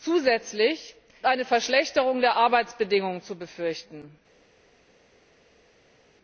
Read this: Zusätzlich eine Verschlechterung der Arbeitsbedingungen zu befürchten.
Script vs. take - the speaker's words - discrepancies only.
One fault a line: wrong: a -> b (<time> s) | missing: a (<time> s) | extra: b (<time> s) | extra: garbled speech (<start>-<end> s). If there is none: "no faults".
no faults